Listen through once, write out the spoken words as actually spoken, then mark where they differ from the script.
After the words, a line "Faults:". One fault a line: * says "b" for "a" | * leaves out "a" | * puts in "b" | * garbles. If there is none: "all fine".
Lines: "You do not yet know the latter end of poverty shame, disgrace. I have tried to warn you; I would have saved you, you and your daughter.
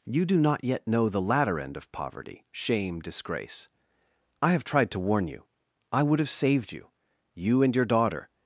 "You do not yet know the latter end of poverty shame, disgrace. I have tried to warn you; I would have saved you, you and your daughter.
Faults:
all fine